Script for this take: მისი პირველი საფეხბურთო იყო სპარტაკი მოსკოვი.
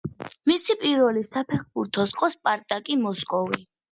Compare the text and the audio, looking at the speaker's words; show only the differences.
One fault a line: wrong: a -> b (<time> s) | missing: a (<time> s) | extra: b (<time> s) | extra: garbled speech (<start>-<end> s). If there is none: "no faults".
no faults